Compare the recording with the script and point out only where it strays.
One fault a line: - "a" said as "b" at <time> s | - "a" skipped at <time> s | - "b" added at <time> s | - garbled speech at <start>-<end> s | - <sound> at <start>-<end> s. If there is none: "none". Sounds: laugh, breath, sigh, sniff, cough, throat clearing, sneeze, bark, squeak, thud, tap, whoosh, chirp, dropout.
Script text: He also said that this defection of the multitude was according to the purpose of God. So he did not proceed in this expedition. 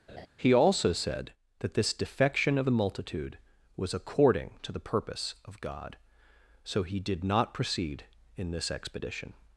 - laugh at 0.1-0.3 s